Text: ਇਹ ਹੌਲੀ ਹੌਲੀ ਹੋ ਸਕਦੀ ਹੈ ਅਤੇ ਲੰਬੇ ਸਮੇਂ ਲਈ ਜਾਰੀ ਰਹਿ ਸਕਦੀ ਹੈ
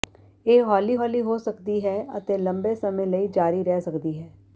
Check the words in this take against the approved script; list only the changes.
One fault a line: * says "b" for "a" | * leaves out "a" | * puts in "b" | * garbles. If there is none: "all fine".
all fine